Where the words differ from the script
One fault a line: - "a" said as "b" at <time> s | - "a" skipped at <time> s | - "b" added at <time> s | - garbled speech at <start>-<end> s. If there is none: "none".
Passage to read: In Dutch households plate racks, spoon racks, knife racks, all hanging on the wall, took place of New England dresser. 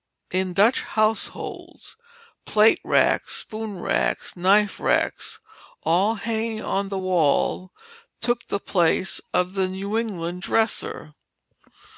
- "the" added at 8.5 s
- "the" added at 9.5 s